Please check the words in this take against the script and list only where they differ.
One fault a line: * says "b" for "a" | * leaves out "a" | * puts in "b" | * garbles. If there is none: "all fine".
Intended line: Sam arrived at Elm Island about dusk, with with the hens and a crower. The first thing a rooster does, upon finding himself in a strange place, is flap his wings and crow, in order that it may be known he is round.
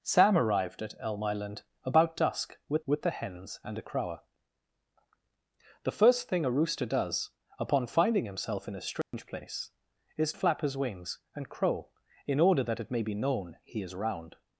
all fine